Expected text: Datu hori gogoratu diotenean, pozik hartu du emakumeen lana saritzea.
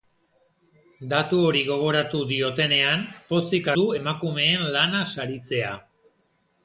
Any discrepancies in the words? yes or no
yes